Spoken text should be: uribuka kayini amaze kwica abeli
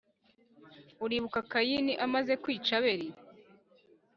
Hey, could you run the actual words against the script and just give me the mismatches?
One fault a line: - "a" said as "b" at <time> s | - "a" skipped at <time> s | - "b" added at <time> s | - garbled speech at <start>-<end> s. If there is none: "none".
none